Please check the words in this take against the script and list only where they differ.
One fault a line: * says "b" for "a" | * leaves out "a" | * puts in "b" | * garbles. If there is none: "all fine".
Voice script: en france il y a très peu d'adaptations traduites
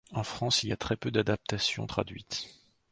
all fine